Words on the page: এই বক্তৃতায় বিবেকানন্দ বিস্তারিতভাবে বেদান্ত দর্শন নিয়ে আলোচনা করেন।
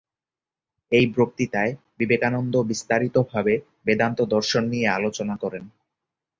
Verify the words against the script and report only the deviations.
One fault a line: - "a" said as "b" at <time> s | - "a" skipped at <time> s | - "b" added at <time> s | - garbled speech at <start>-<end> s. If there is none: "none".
none